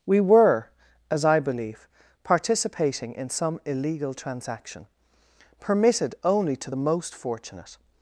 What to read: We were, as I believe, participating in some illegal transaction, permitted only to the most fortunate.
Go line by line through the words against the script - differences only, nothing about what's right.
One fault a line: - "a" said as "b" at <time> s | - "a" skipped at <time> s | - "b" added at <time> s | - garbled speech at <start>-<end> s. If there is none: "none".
none